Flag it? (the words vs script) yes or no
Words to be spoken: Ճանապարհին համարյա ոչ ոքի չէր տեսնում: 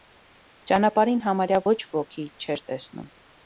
no